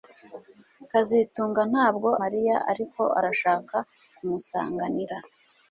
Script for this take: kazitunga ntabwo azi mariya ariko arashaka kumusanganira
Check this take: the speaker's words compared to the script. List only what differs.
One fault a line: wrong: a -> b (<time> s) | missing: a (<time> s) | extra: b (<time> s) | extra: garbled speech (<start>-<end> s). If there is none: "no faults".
missing: azi (2.1 s)